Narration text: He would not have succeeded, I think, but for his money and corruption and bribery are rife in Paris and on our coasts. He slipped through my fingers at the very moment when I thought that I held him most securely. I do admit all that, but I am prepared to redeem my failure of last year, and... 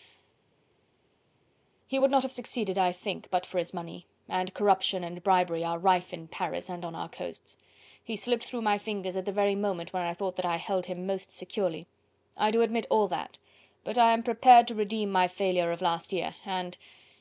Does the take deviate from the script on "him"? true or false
false